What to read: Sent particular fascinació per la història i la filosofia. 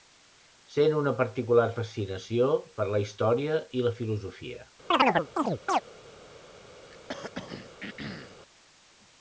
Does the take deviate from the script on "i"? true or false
false